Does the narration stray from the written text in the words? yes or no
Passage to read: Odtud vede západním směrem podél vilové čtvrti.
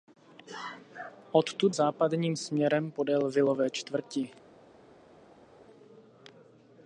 yes